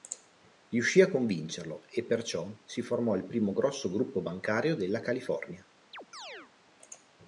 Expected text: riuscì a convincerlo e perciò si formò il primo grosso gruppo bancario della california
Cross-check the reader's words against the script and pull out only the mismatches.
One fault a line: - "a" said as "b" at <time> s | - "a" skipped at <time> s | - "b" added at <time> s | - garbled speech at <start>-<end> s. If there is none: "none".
none